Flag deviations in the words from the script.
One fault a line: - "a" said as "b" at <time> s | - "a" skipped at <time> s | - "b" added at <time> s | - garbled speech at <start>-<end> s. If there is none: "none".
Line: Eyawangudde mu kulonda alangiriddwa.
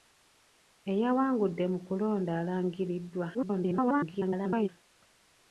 - garbled speech at 3.3-4.7 s